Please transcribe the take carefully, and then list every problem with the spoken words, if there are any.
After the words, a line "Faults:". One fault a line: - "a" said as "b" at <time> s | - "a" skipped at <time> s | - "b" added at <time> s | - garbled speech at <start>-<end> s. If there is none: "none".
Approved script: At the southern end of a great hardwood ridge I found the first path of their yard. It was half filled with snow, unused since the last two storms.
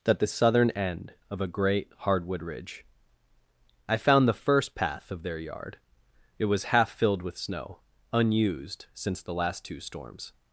That the southern end of a great hardwood ridge I found the first path of their yard. It was half filled with snow, unused since the last two storms.
Faults:
- "At" said as "That" at 0.1 s